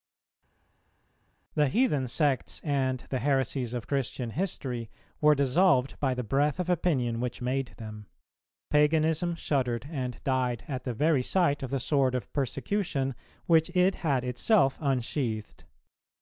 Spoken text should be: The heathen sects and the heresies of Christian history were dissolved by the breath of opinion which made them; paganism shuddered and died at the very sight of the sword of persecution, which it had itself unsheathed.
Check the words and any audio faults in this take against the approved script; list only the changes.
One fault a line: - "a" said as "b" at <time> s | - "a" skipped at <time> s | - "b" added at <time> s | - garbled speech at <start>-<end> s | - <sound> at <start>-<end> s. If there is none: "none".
none